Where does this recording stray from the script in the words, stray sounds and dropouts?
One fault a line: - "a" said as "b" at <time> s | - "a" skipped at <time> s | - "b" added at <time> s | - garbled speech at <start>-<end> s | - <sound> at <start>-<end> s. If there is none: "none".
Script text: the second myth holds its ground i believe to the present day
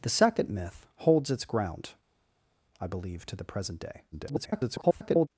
- garbled speech at 4.1-5.3 s